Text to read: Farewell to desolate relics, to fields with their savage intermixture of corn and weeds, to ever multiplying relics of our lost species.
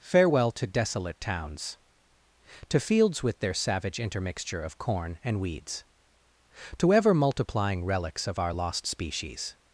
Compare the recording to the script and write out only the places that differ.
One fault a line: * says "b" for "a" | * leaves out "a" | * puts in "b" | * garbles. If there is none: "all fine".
* says "towns" for "relics"